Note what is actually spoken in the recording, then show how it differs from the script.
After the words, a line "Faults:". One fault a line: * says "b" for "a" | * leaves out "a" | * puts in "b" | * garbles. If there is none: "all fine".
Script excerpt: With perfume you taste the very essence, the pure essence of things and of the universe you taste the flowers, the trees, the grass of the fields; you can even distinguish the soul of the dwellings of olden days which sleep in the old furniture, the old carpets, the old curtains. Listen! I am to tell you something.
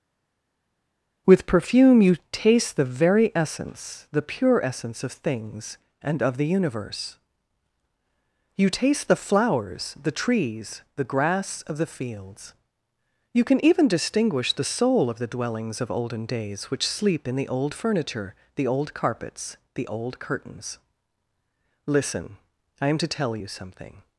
With perfume you taste the very essence, the pure essence of things and of the universe you taste the flowers, the trees, the grass of the fields; you can even distinguish the soul of the dwellings of olden days which sleep in the old furniture, the old carpets, the old curtains. Listen! I am to tell you something.
Faults:
all fine